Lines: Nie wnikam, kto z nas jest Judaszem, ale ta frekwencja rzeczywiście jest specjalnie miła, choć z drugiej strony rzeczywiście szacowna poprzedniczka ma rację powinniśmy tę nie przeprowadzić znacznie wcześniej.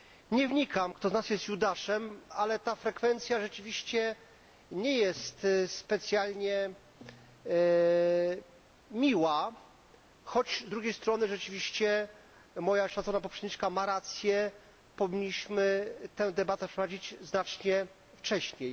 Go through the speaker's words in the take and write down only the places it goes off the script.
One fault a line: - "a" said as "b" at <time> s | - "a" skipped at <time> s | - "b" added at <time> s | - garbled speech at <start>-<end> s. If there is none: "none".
- "nie" added at 4.7 s
- "moja" added at 12.6 s
- "nie" said as "debatę" at 16.3 s